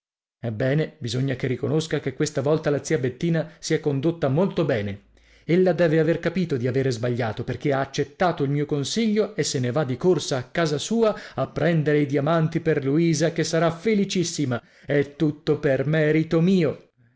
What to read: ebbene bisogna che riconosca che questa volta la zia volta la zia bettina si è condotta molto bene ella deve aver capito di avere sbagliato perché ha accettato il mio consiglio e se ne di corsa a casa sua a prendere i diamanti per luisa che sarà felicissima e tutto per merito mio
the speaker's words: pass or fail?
fail